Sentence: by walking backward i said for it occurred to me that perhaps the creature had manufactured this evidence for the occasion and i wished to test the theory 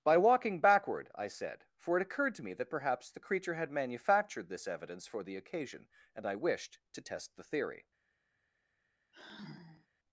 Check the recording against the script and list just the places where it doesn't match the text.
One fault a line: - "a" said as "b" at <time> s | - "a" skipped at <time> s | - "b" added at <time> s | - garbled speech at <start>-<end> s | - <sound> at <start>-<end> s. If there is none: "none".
- sigh at 9.1-9.9 s